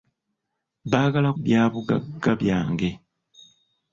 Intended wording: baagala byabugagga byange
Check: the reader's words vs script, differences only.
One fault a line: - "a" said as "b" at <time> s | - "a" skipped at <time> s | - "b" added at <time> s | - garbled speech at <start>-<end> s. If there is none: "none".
none